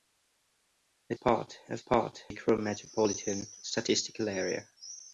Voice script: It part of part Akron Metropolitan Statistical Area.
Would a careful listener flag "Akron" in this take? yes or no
no